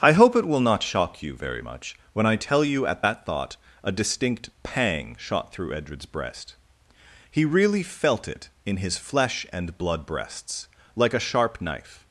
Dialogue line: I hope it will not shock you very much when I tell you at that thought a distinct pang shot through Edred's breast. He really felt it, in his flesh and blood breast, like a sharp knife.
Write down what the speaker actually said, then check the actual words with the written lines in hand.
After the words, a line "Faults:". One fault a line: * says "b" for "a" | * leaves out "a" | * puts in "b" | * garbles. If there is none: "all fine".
I hope it will not shock you very much when I tell you at that thought a distinct pang shot through Edred's breast. He really felt it, in his flesh and blood breasts, like a sharp knife.
Faults:
* says "breasts" for "breast"